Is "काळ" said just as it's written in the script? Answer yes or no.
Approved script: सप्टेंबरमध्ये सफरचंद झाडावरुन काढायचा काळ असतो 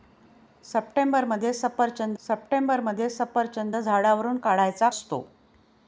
no